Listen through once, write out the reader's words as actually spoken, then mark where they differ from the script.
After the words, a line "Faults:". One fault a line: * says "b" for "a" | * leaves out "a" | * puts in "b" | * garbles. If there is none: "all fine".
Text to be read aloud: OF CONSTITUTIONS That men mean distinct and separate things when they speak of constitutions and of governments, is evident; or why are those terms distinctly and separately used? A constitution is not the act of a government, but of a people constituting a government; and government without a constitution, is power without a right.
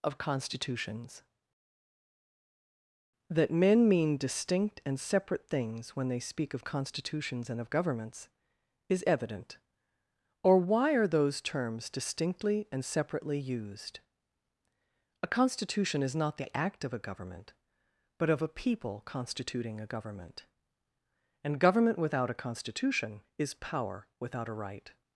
OF CONSTITUTIONS That men mean distinct and separate things when they speak of constitutions and of governments, is evident; or why are those terms distinctly and separately used? A constitution is not the act of a government, but of a people constituting a government; and government without a constitution, is power without a right.
Faults:
all fine